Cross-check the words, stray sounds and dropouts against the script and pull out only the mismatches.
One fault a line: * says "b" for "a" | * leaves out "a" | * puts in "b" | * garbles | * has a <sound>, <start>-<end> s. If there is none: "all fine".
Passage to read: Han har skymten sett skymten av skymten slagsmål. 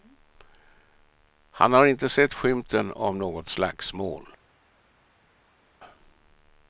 * says "inte" for "skymten"
* says "något" for "skymten"